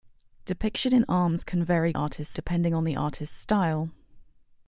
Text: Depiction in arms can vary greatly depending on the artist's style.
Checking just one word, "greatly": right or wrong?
wrong